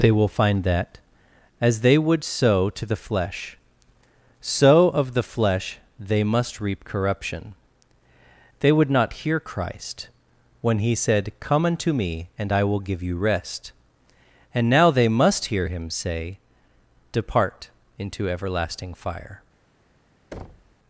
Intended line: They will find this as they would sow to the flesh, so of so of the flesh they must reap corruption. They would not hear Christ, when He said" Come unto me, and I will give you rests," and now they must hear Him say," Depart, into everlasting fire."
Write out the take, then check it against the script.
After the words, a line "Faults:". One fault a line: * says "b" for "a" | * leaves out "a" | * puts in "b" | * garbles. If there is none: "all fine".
They will find that as they would sow to the flesh, so of the flesh they must reap corruption. They would not hear Christ, when He said" Come unto me, and I will give you rest," and now they must hear Him say," Depart, into everlasting fire."
Faults:
* says "that" for "this"
* leaves out "so of"
* says "rest" for "rests"